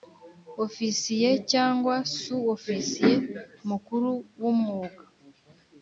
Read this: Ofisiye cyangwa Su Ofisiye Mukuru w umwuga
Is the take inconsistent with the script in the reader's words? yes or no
no